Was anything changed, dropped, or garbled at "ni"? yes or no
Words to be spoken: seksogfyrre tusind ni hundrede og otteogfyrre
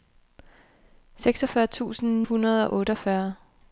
yes